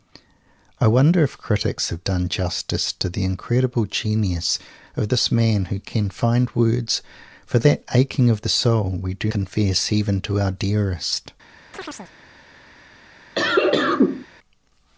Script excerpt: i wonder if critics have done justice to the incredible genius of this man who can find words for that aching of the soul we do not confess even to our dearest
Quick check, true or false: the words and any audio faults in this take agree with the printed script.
false